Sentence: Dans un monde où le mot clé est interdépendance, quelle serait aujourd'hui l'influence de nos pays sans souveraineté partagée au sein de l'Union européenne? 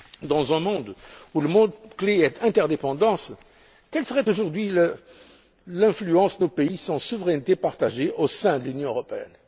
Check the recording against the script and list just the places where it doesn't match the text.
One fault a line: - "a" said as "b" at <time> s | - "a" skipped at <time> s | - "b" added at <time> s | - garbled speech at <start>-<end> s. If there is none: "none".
none